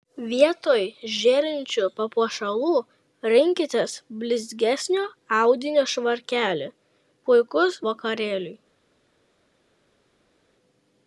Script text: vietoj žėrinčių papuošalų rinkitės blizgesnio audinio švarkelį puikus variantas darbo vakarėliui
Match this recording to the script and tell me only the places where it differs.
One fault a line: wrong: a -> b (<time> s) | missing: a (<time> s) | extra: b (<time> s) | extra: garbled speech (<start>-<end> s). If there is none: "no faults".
missing: variantas darbo (7.8 s)